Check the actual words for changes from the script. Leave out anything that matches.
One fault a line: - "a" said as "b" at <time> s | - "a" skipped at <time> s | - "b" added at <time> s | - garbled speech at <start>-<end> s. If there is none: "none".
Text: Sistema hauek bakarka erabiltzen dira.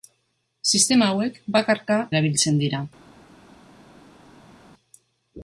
none